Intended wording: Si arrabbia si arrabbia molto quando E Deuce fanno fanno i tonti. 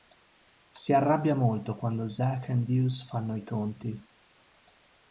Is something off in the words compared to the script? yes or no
yes